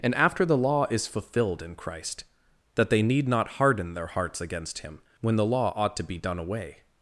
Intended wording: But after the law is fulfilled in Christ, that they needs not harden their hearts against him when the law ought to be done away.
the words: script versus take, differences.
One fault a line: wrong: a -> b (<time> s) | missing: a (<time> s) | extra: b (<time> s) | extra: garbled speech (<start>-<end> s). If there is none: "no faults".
wrong: But -> And (0.0 s)
wrong: needs -> need (3.0 s)